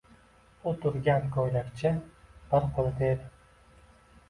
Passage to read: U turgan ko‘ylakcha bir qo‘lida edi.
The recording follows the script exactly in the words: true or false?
true